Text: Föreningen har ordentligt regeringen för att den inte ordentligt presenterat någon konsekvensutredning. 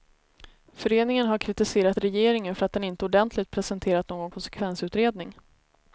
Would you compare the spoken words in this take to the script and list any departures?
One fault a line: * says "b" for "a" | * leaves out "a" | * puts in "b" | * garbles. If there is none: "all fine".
* says "kritiserat" for "ordentligt"